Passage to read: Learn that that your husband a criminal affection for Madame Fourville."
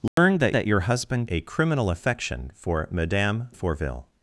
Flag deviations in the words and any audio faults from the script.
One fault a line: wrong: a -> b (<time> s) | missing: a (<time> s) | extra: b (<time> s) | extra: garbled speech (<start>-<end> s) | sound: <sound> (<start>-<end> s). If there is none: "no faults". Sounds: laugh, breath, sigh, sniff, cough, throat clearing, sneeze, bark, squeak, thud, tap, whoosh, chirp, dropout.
sound: dropout (0.1-0.2 s)